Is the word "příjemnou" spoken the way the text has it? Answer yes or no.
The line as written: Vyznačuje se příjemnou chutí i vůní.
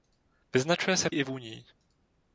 no